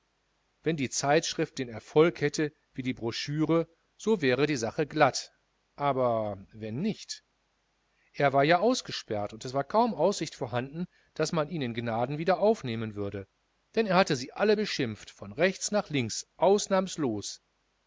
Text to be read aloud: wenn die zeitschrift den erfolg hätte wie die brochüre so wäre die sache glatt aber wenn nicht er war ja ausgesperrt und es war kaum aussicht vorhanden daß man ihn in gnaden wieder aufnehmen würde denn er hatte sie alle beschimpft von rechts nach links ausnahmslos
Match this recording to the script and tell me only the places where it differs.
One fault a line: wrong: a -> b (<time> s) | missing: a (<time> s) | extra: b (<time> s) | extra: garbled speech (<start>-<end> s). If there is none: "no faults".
no faults